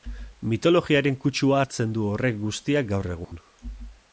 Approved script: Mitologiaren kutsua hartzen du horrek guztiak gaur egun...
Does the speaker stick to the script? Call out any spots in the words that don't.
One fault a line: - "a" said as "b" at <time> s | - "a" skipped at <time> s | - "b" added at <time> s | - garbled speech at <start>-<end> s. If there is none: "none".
none